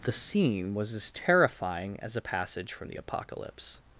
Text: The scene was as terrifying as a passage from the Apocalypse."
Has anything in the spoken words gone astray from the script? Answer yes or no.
no